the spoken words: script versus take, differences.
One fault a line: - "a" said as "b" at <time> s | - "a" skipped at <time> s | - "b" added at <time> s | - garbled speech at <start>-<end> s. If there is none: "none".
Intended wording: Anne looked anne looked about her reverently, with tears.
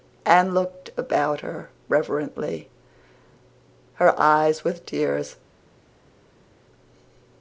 - "anne looked about" said as "about her reverently" at 1.0 s
- "reverently" said as "eyes" at 4.2 s